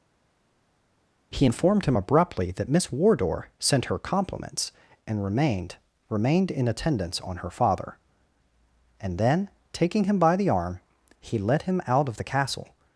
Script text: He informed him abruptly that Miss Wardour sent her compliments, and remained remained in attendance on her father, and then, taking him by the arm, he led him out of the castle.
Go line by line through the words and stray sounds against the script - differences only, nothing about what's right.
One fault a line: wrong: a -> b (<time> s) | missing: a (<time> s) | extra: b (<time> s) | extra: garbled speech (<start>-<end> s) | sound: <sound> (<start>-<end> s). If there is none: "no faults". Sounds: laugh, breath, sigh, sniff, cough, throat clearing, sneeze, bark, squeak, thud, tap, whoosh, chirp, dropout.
no faults